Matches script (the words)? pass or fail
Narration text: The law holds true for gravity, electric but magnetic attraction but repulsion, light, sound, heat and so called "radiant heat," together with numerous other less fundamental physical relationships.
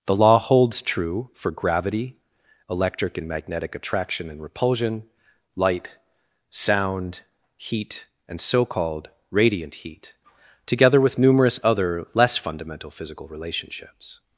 fail